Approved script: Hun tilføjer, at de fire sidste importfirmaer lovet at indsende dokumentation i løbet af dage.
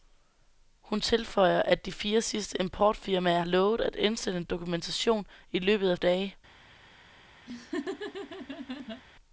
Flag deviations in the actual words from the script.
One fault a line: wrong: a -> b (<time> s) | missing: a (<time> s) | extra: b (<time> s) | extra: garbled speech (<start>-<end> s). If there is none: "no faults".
no faults